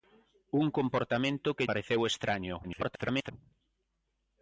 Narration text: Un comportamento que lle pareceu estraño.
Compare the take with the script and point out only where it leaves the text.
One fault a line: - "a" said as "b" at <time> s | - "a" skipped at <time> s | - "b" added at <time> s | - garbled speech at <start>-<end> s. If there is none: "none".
- "lle" skipped at 1.7 s
- garbled speech at 2.6-3.3 s